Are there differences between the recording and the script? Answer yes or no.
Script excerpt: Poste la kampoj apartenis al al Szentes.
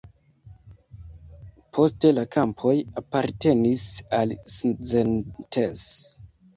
yes